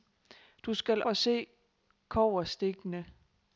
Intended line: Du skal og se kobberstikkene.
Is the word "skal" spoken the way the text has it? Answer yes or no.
yes